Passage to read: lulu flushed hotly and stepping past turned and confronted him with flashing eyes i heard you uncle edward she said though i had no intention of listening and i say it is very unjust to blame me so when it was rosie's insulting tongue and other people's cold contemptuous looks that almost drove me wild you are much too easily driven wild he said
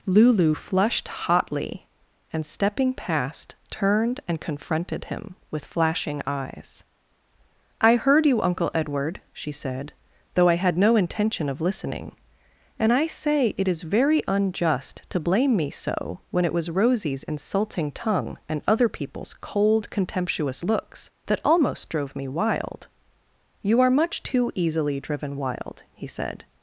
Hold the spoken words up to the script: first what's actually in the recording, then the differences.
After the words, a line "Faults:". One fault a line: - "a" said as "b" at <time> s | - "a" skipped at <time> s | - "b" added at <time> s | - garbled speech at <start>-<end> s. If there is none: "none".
lulu flushed hotly and stepping past turned and confronted him with flashing eyes i heard you uncle edward she said though i had no intention of listening and i say it is very unjust to blame me so when it was rosie's insulting tongue and other people's cold contemptuous looks that almost drove me wild you are much too easily driven wild he said
Faults:
none